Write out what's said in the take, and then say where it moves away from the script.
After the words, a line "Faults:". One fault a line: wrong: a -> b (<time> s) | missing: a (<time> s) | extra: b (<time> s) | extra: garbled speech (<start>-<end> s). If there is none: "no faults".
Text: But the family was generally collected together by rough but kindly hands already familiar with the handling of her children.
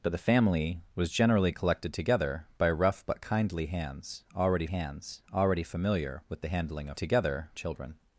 But the family was generally collected together by rough but kindly hands already hands already familiar with the handling of together children.
Faults:
extra: hands already (4.7 s)
wrong: her -> together (7.0 s)